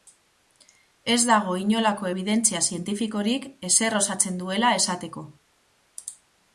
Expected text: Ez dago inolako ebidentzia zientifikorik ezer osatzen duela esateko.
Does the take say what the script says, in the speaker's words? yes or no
yes